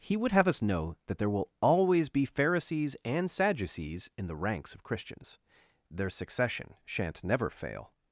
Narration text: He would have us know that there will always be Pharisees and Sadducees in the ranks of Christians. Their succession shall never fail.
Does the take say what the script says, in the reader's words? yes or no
no